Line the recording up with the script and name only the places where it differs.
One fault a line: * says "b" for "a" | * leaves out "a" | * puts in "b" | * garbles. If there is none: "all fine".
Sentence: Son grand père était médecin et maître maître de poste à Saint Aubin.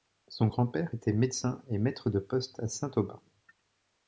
* leaves out "maître"